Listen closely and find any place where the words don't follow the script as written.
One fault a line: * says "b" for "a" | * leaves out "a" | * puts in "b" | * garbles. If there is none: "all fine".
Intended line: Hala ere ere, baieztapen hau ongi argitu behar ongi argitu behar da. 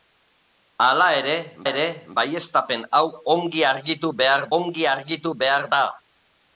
all fine